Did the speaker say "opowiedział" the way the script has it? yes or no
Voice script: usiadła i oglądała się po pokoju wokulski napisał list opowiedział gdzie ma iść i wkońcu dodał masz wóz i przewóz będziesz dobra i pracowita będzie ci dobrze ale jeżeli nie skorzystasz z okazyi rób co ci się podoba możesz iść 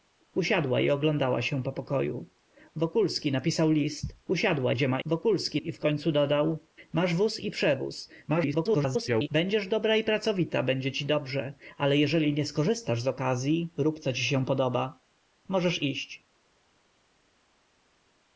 no